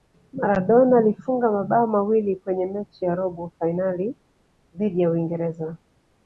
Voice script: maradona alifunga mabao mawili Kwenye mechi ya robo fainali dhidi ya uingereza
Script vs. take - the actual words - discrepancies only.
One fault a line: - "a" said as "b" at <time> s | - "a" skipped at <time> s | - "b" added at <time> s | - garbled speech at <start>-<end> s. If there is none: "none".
none